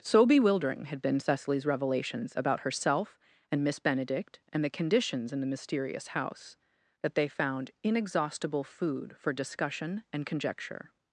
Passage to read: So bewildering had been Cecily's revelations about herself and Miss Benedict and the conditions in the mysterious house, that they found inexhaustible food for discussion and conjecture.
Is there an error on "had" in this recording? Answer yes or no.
no